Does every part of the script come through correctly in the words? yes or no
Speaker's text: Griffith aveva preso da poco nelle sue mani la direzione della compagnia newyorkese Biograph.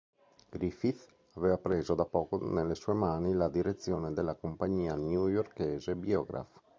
yes